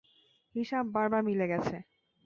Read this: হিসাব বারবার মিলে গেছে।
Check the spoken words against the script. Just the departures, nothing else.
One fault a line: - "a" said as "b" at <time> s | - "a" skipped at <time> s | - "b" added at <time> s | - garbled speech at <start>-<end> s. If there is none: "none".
none